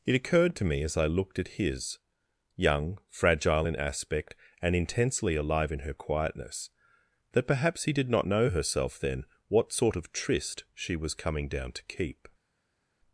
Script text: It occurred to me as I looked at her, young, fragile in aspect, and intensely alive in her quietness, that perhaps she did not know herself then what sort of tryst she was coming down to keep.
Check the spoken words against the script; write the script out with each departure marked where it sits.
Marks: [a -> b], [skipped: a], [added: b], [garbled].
It occurred to me as I looked at [her, -> his] young, fragile in aspect, and intensely alive in her quietness, that perhaps [she -> he] did not know herself then what sort of tryst she was coming down to keep.